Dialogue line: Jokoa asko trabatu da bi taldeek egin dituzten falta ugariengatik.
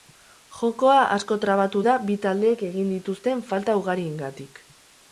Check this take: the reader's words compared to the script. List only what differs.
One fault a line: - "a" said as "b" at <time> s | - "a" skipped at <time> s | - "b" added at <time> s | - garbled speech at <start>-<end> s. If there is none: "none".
none